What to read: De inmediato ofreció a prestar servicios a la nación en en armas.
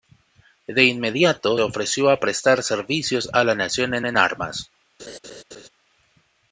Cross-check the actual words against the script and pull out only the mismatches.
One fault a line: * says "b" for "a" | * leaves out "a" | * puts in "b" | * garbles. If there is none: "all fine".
all fine